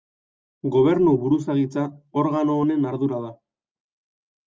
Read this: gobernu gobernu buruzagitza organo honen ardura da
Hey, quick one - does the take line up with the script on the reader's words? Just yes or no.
no